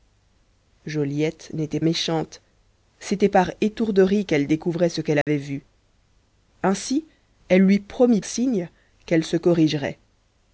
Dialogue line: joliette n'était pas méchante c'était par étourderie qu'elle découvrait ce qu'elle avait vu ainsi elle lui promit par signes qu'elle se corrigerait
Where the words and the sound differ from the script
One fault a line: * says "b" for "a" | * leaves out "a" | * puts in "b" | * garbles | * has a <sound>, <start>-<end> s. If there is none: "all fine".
* leaves out "pas"
* has a dropout, 5.2-5.3 s
* leaves out "par"